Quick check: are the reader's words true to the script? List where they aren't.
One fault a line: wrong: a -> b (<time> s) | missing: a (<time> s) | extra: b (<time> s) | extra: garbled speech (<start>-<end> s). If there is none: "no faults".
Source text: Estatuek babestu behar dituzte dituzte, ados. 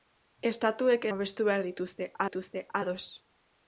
no faults